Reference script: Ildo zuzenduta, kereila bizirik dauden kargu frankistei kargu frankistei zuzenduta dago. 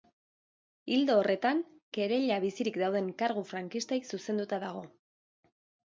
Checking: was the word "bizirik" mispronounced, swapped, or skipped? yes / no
no